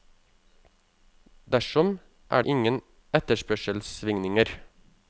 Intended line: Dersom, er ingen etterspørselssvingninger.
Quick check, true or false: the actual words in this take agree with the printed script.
true